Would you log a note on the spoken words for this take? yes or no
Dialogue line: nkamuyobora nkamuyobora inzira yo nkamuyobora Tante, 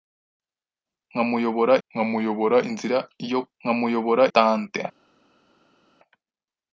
no